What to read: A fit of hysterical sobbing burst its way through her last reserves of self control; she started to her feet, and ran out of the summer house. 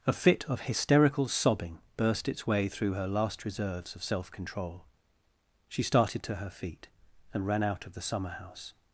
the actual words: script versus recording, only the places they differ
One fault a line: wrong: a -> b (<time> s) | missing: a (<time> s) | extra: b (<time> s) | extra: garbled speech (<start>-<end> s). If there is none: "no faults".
no faults